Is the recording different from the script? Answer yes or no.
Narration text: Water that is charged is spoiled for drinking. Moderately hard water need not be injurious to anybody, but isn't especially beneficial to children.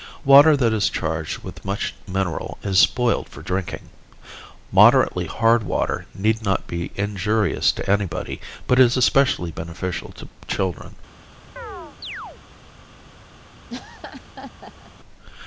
yes